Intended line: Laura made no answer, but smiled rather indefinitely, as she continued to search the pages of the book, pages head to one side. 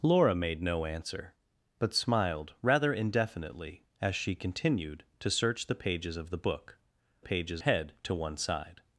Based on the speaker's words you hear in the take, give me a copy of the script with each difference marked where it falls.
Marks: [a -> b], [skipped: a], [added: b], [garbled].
Laura made no answer, but smiled rather indefinitely, as she continued to search the pages of the book, pages head to one side.